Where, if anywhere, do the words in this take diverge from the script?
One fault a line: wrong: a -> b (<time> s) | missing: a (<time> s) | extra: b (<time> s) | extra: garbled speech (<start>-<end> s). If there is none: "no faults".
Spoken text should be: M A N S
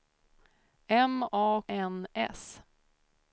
no faults